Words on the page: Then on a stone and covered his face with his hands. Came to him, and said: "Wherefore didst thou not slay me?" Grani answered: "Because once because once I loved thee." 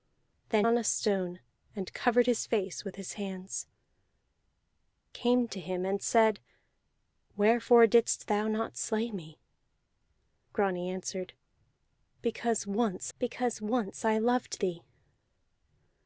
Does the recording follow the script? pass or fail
pass